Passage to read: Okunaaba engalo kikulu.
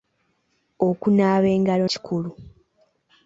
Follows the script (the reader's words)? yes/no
yes